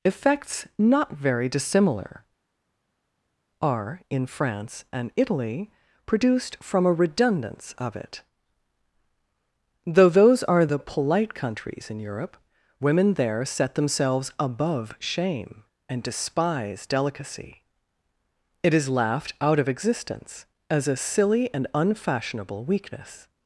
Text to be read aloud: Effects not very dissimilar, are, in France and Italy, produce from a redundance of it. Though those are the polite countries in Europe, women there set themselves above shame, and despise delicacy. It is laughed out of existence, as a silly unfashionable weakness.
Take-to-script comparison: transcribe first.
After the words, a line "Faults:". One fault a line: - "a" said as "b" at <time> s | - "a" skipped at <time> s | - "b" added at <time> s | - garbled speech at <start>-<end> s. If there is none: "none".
Effects not very dissimilar, are, in France and Italy, produced from a redundance of it. Though those are the polite countries in Europe, women there set themselves above shame, and despise delicacy. It is laughed out of existence, as a silly and unfashionable weakness.
Faults:
- "produce" said as "produced" at 6.1 s
- "and" added at 21.5 s